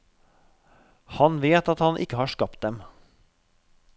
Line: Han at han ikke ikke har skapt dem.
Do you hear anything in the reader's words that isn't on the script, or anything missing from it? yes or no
yes